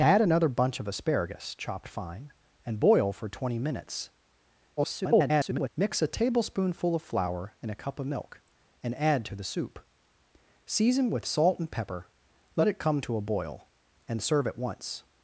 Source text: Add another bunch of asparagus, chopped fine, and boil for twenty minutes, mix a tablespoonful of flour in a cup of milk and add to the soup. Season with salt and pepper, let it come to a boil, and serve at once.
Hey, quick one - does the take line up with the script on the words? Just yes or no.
no